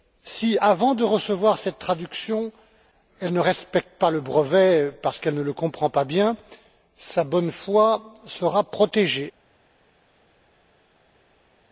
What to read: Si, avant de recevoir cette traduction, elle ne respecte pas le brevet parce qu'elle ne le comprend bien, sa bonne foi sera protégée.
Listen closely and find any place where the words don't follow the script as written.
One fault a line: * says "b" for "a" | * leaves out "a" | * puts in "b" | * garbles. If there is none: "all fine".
* puts in "pas"